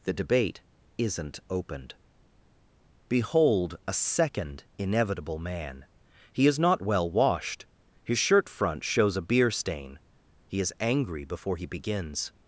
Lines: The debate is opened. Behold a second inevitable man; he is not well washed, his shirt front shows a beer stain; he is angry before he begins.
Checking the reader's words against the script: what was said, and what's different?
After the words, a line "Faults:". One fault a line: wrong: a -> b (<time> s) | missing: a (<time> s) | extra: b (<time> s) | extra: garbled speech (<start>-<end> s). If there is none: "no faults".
The debate isn't opened. Behold a second inevitable man; he is not well washed, his shirt front shows a beer stain; he is angry before he begins.
Faults:
wrong: is -> isn't (1.0 s)